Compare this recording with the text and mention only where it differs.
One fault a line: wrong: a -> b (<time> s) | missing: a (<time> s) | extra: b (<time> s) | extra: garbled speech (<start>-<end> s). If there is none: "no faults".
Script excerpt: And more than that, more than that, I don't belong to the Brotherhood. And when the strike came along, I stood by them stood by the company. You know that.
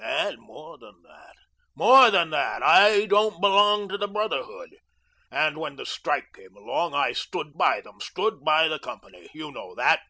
no faults